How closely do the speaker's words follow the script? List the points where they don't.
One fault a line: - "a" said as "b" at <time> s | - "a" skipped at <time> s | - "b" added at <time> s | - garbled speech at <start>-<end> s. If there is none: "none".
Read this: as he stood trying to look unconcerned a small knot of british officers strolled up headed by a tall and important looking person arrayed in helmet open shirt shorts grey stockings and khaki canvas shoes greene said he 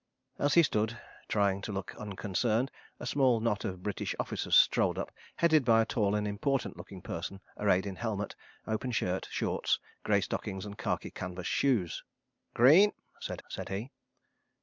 - "said" added at 13.5 s